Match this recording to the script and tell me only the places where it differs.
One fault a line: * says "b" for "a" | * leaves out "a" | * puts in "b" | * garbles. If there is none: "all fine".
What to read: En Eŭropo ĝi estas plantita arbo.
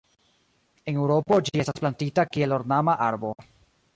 * puts in "kiel ornama"